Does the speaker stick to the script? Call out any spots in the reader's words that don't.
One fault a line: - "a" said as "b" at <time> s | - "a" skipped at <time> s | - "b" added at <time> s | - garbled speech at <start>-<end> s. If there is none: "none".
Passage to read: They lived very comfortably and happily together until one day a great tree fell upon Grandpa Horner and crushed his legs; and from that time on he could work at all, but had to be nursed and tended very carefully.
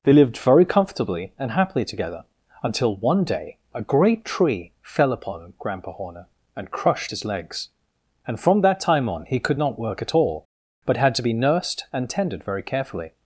- "not" added at 9.6 s